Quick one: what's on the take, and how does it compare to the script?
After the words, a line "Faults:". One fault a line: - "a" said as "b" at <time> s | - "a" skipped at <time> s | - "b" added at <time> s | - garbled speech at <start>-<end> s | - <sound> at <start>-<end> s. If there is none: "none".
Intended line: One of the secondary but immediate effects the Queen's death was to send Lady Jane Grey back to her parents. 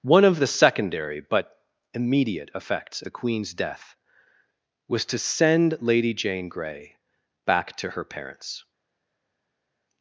One of the secondary but immediate effects the Queen's death was to send Lady Jane Grey back to her parents.
Faults:
none